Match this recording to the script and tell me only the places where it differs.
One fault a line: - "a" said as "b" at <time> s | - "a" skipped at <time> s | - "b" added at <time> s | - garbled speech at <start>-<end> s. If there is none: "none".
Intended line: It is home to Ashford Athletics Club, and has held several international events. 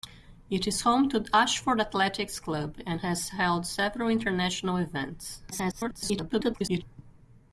- garbled speech at 5.5-6.8 s